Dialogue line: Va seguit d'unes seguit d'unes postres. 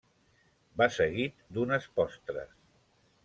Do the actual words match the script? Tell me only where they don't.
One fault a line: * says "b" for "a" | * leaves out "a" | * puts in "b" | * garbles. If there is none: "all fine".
* leaves out "seguit d'unes"